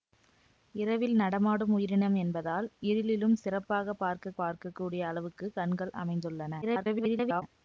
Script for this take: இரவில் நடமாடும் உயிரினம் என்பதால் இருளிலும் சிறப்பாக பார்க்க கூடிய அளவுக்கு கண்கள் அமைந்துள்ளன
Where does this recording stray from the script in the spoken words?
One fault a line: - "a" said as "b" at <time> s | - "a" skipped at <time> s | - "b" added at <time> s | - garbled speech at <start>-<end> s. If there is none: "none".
- "பார்க்க" added at 4.3 s
- garbled speech at 6.6-7.4 s